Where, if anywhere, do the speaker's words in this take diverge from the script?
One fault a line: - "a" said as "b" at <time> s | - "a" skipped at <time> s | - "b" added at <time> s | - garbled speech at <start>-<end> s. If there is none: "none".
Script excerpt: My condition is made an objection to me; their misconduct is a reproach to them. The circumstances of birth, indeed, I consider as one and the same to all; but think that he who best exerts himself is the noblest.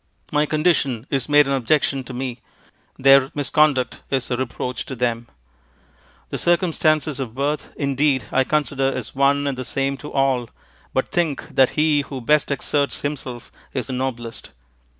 none